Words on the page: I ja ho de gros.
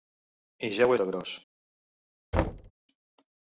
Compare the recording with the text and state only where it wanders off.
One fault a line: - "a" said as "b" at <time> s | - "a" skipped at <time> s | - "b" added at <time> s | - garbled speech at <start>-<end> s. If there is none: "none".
none